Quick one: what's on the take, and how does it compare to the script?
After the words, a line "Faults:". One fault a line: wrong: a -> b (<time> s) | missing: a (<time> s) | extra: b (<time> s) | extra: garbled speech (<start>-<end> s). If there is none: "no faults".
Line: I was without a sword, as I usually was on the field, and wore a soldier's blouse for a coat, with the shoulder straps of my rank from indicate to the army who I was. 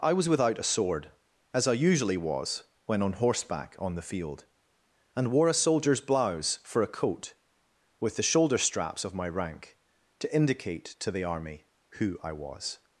I was without a sword, as I usually was when on horseback on the field, and wore a soldier's blouse for a coat, with the shoulder straps of my rank to indicate to the army who I was.
Faults:
extra: when (2.9 s)
extra: horseback on (3.1 s)
wrong: from -> to (10.2 s)